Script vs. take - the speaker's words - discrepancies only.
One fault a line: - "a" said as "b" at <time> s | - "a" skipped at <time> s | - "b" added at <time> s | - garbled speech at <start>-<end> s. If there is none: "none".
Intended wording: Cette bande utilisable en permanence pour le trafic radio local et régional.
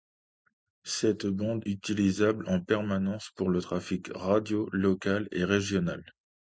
none